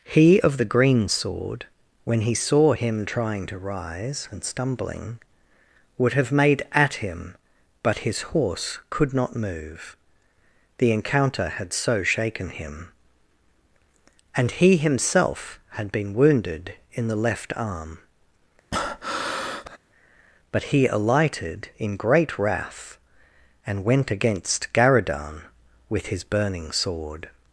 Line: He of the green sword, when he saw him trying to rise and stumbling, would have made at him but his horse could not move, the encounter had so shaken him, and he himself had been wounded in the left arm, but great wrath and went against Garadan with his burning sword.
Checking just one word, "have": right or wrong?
right